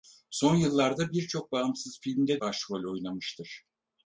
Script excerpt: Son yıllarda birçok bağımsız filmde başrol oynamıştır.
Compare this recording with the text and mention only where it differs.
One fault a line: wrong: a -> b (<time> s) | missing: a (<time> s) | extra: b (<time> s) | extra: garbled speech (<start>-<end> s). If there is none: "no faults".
no faults